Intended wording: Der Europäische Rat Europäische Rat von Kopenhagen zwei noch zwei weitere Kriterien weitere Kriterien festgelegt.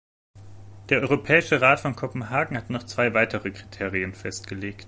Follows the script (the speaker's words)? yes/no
no